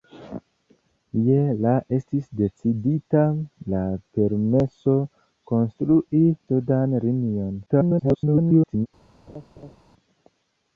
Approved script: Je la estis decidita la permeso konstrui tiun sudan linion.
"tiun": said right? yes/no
no